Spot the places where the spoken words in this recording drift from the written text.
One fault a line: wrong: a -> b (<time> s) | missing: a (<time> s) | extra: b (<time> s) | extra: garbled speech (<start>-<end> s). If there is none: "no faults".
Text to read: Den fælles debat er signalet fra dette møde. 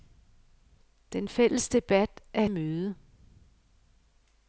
missing: signalet fra dette (2.5 s)